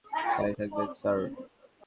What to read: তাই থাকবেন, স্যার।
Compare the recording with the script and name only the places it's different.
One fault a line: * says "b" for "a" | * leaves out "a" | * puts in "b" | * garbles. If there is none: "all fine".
all fine